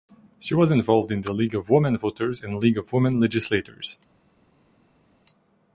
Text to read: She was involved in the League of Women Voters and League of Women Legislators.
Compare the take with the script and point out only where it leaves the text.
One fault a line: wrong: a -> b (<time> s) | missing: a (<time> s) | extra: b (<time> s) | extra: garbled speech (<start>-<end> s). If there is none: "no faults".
no faults